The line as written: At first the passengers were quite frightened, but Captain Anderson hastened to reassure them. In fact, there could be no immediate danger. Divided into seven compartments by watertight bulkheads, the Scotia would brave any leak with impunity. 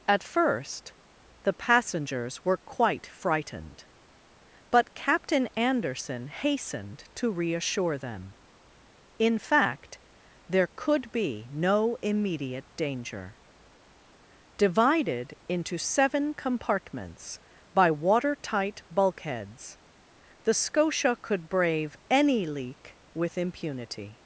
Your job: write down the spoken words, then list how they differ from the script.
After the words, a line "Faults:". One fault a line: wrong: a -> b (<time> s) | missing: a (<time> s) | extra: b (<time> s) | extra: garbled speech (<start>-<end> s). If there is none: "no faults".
At first the passengers were quite frightened, but Captain Anderson hastened to reassure them. In fact, there could be no immediate danger. Divided into seven compartments by watertight bulkheads, the Scotia could brave any leak with impunity.
Faults:
wrong: would -> could (21.2 s)